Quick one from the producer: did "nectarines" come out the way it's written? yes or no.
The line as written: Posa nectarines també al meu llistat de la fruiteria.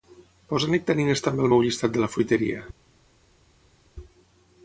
yes